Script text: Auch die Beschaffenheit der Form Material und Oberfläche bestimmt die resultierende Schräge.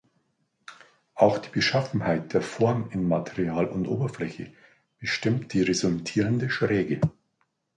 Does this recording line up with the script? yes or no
no